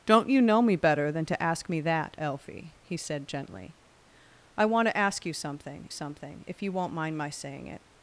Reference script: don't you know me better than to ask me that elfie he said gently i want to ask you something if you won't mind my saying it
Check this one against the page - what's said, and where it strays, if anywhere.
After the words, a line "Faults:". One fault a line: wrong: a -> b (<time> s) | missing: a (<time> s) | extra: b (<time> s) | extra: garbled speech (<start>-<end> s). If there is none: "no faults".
don't you know me better than to ask me that elfie he said gently i want to ask you something something if you won't mind my saying it
Faults:
extra: something (5.9 s)